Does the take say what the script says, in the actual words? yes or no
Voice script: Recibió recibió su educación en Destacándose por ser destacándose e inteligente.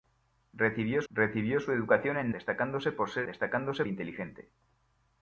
yes